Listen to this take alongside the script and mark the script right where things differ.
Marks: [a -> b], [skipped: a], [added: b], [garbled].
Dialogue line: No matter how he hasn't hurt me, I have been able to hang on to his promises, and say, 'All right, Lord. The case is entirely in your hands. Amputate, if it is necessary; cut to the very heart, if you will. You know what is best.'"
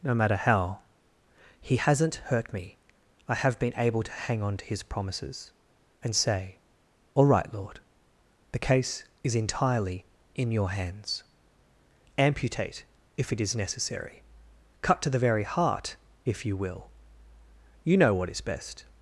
No matter how he hasn't hurt me, I have been able to hang on to his promises, and say, 'All right, Lord. The case is entirely in your hands. Amputate, if it is necessary; cut to the very heart, if you will. You know what is best.'"